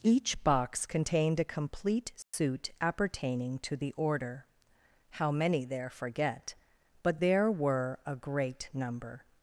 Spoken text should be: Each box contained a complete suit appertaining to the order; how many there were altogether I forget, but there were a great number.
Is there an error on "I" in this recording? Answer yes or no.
yes